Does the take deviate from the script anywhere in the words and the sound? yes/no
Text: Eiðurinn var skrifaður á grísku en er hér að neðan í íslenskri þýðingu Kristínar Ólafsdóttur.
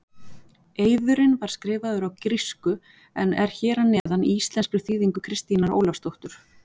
yes